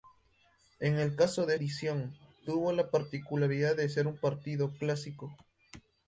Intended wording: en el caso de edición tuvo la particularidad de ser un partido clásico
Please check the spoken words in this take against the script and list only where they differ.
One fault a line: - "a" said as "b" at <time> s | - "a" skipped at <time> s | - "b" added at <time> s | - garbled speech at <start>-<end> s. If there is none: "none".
none